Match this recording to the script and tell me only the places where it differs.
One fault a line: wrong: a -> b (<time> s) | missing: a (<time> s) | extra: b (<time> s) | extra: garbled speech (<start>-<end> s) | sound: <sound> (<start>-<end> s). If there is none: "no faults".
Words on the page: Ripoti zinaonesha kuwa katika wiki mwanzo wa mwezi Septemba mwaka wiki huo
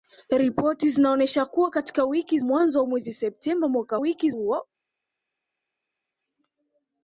no faults